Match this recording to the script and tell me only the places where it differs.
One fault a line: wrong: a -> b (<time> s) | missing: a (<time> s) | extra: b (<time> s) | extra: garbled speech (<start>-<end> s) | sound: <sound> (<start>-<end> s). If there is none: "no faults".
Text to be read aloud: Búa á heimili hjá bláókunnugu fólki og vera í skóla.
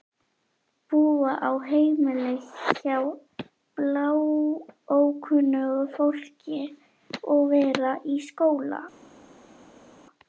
no faults